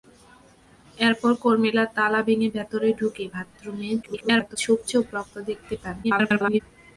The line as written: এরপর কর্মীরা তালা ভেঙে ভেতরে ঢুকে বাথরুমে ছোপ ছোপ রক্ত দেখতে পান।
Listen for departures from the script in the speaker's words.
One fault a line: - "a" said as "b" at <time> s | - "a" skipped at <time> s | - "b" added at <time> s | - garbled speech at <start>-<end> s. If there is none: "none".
- garbled speech at 4.0-4.6 s
- garbled speech at 6.0-6.6 s